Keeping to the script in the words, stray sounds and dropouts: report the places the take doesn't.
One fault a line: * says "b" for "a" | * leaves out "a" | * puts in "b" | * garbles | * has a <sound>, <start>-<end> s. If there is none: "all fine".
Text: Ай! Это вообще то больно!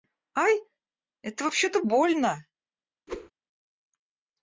* has a whoosh, 3.1-3.3 s